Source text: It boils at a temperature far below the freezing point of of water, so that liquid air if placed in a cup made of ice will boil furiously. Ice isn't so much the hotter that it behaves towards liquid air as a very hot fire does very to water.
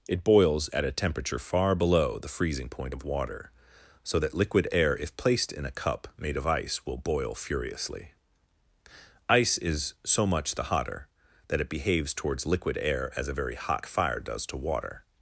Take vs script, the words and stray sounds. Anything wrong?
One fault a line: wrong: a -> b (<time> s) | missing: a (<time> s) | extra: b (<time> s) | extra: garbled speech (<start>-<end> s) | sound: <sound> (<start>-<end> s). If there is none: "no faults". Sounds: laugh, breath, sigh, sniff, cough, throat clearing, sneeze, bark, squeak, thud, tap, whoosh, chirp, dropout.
missing: of (3.0 s)
wrong: isn't -> is (9.6 s)
missing: very (14.5 s)